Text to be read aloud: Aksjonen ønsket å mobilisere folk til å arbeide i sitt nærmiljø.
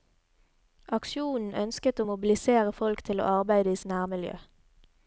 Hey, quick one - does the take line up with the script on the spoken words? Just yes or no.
no